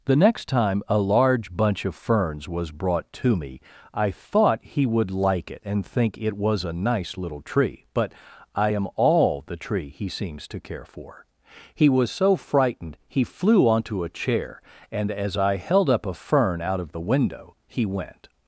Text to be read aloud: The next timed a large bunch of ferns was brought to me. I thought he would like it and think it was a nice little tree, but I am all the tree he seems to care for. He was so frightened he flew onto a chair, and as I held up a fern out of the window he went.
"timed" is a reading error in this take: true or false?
true